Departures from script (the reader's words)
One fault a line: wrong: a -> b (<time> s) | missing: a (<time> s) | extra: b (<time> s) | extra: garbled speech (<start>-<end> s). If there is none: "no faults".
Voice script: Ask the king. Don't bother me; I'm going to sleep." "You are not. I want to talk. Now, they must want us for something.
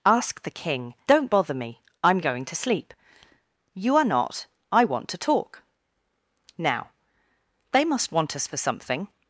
no faults